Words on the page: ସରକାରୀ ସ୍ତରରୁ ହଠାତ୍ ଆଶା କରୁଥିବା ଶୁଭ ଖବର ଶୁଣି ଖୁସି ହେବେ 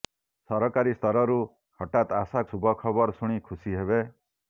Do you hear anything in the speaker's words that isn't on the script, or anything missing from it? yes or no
yes